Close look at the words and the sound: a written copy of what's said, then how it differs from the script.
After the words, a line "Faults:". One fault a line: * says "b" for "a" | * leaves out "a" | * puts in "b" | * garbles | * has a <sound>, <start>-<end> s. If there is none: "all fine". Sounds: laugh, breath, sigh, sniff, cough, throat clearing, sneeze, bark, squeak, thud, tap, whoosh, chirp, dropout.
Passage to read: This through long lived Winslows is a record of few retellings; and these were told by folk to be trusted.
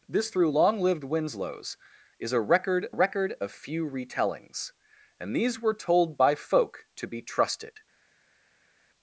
This through long lived Winslows is a record record of few retellings; and these were told by folk to be trusted.
Faults:
* puts in "record"